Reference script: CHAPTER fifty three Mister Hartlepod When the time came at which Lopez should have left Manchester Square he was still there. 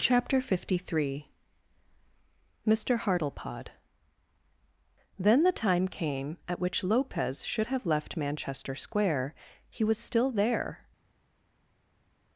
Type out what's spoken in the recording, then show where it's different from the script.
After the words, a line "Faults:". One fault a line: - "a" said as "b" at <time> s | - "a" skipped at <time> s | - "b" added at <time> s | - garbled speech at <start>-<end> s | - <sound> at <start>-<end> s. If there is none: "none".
CHAPTER fifty three Mister Hartlepod Then the time came at which Lopez should have left Manchester Square he was still there.
Faults:
- "When" said as "Then" at 5.2 s